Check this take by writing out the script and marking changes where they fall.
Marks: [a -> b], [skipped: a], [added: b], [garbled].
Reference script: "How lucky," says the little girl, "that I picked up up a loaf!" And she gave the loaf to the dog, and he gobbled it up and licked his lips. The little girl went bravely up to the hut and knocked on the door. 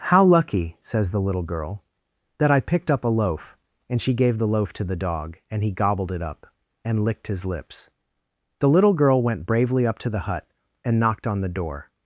"How lucky," says the little girl, "that I picked up [skipped: up] a loaf!" And she gave the loaf to the dog, and he gobbled it up and licked his lips. The little girl went bravely up to the hut and knocked on the door.